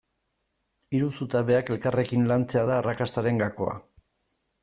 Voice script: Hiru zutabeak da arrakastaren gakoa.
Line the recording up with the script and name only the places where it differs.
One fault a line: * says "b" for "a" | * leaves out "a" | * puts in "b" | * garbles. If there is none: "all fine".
* puts in "elkarrekin lantzea"